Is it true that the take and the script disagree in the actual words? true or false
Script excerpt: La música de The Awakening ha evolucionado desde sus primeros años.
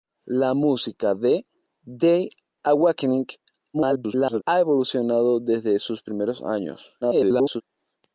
true